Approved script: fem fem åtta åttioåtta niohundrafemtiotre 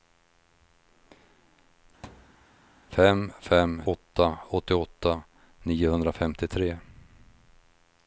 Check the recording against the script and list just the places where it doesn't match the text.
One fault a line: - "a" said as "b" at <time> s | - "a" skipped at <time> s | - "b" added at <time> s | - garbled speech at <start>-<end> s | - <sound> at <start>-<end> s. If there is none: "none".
- thud at 2.0-2.5 s